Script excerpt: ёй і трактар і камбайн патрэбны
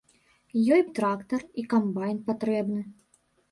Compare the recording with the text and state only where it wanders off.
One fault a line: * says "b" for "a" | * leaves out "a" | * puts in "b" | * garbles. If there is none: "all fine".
all fine